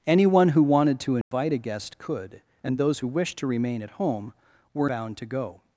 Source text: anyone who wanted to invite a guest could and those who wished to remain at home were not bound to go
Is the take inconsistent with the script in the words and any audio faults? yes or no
yes